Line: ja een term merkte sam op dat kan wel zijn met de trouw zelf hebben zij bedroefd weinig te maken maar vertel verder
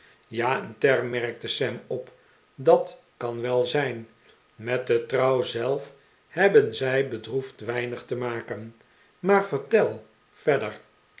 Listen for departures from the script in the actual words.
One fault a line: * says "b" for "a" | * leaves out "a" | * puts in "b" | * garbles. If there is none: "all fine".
all fine